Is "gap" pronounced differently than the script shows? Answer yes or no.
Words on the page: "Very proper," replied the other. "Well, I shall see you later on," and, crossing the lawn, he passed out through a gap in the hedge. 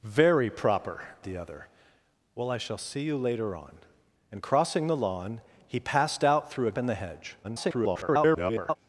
yes